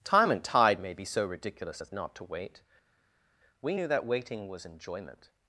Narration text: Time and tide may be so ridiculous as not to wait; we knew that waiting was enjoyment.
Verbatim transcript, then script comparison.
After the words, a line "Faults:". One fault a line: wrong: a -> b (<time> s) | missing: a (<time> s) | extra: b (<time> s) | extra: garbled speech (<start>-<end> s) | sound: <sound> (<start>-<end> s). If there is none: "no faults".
Time and tide may be so ridiculous as not to wait; we knew that waiting was enjoyment.
Faults:
no faults